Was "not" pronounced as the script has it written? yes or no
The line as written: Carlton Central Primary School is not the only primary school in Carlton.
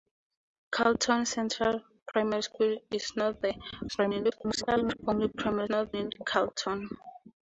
yes